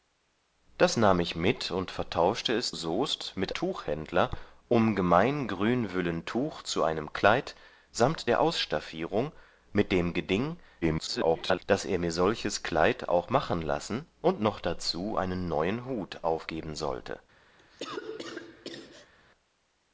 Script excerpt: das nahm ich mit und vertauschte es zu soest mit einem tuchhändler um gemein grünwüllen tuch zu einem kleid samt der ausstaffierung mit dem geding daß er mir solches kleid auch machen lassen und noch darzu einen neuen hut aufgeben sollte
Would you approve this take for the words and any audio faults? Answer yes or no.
no